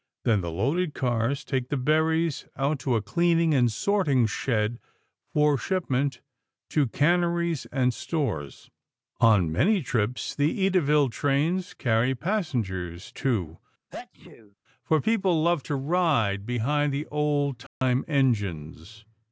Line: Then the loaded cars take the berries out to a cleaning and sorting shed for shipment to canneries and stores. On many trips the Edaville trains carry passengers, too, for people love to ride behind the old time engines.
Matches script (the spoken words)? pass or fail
pass